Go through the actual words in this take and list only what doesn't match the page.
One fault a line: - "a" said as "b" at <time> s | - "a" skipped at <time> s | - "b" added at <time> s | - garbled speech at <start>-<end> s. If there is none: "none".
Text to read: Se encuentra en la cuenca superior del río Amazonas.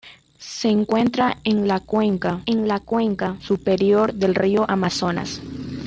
- "en la cuenca" added at 2.4 s